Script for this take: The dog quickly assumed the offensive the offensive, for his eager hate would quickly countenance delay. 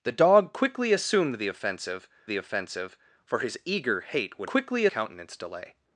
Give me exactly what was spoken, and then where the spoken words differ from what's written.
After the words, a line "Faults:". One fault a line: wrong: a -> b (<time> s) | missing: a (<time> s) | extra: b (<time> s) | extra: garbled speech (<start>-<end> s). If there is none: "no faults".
The dog quickly assumed the offensive the offensive, for his eager hate would quickly countenance delay.
Faults:
no faults